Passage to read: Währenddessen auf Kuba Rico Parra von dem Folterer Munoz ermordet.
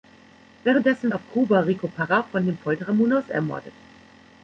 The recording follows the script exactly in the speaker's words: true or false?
true